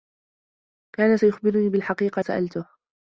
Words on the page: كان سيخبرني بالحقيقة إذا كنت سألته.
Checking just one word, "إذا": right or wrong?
wrong